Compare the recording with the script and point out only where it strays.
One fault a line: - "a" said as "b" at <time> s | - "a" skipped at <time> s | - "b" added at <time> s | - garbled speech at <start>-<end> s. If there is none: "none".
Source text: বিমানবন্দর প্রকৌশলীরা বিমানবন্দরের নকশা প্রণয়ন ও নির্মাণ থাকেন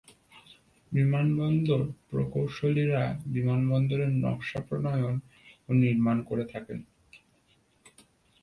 - "করে" added at 6.2 s